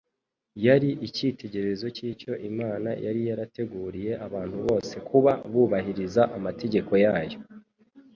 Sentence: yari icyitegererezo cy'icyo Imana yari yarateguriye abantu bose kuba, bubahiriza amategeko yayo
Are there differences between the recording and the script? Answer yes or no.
no